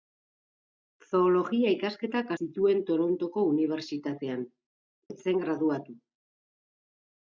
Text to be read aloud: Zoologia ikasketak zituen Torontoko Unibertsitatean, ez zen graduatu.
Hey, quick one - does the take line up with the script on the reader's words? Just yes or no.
yes